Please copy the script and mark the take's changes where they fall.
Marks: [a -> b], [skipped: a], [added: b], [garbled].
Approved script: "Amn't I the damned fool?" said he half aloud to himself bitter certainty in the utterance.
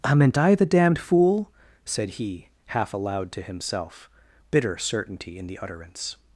"Amn't I the damned fool?" said he half aloud to himself bitter certainty in the utterance.